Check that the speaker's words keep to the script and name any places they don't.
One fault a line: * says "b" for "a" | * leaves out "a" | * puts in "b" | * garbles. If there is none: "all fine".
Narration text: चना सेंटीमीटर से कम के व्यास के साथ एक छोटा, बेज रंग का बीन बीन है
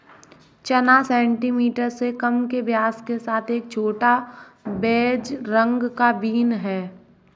* leaves out "बीन"